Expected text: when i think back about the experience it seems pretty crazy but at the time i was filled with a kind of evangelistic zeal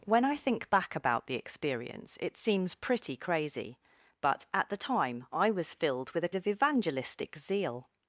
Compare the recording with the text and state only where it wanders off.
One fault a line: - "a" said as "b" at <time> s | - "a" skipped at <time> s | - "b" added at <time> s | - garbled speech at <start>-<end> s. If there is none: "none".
- "kind" skipped at 6.3 s